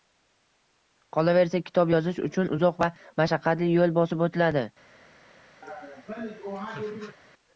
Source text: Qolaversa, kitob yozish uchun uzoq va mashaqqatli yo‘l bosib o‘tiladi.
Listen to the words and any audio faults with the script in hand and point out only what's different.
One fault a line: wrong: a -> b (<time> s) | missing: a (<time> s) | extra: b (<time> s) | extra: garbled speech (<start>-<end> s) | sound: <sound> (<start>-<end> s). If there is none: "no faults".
sound: laugh (5.6-7.2 s)